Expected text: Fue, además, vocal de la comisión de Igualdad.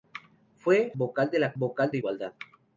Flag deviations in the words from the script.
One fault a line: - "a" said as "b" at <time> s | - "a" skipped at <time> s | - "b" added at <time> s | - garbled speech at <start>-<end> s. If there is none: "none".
- "además" skipped at 0.9 s
- "comisión" said as "vocal" at 1.6 s